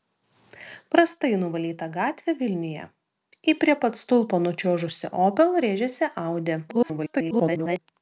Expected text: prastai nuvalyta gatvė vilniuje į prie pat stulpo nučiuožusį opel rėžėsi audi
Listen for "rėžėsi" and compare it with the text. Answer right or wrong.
right